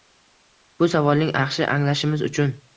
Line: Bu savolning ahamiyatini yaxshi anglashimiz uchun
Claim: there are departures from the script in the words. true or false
true